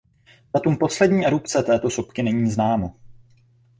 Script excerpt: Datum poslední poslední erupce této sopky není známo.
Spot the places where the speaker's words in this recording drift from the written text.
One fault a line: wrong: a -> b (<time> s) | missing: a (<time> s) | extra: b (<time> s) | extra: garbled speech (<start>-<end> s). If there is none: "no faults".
missing: poslední (1.3 s)